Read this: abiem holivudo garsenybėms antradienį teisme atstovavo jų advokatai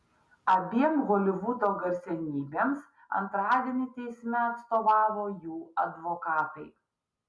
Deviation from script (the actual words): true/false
false